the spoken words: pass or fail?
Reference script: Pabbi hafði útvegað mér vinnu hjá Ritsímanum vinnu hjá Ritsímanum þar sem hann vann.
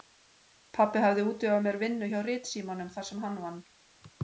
fail